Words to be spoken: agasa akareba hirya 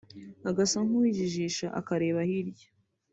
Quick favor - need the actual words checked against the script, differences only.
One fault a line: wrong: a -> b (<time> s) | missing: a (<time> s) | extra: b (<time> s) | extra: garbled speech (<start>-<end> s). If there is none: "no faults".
extra: nkuwijijisha (0.8 s)